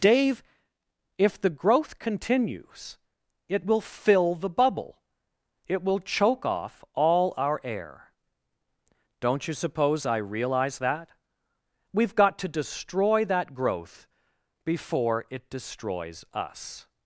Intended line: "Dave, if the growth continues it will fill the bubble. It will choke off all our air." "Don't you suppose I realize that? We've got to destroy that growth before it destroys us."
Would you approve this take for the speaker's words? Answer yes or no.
yes